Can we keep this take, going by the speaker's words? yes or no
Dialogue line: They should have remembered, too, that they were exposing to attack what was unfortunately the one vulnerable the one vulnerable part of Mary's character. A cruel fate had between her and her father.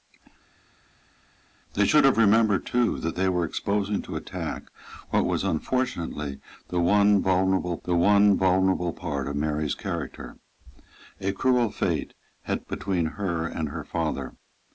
yes